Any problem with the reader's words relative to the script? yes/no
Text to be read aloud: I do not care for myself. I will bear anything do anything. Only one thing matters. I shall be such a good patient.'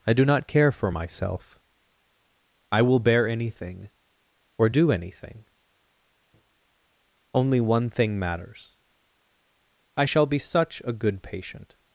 yes